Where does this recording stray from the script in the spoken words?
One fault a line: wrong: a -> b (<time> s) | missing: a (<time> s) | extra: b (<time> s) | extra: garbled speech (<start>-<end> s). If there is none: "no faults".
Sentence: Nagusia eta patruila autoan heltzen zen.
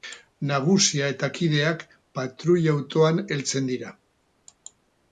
extra: kideak (1.4 s)
wrong: zen -> dira (3.8 s)